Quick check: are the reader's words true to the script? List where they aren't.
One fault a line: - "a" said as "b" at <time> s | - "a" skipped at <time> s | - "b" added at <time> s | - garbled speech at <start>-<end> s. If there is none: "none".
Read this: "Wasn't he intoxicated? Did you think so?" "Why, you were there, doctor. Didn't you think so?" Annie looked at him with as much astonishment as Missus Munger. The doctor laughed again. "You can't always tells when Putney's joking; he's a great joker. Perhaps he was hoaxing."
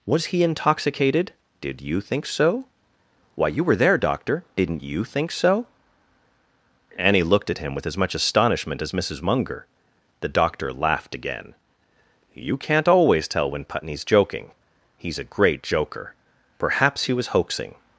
- "Wasn't" said as "Was" at 0.1 s
- "tells" said as "tell" at 13.3 s